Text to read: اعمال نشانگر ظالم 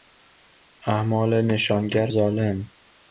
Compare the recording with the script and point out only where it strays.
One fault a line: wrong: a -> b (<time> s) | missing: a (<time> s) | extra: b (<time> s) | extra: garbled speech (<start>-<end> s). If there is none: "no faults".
no faults